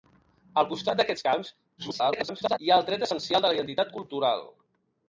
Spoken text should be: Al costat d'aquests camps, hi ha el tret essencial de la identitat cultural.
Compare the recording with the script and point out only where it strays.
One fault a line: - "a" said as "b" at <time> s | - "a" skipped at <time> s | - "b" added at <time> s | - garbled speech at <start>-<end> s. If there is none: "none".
- garbled speech at 1.8-2.6 s